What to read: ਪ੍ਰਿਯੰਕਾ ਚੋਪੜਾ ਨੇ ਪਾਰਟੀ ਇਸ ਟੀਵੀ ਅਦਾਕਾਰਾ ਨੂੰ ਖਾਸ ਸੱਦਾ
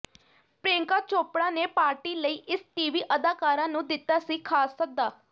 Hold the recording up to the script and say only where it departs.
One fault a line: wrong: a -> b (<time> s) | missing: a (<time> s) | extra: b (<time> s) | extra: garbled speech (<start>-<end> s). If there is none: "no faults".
extra: ਲਈ (2.1 s)
extra: ਦਿੱਤਾ ਸੀ (3.9 s)